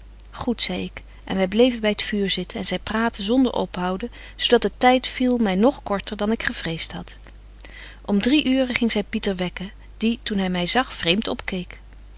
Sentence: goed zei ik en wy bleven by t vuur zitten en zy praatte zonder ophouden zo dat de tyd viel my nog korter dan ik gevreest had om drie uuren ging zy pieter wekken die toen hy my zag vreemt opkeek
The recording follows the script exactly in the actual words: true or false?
true